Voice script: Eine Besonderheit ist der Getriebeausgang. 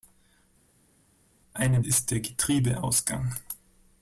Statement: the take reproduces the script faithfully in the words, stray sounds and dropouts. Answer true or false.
false